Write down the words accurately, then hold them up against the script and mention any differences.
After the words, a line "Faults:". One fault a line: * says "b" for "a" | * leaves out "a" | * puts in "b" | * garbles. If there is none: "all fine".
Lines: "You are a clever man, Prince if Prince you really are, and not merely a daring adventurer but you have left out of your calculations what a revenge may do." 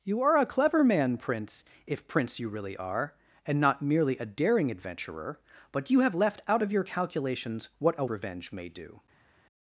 "You are a clever man, Prince if Prince you really are, and not merely a daring adventurer but you have left out of your calculations what a revenge may do."
Faults:
all fine